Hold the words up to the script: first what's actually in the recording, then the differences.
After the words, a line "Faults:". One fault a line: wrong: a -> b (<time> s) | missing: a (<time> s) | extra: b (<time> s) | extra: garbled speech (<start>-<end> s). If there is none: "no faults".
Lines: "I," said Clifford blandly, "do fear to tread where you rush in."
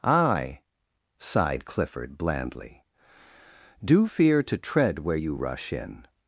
"I," sighed Clifford blandly, "do fear to tread where you rush in."
Faults:
wrong: said -> sighed (1.2 s)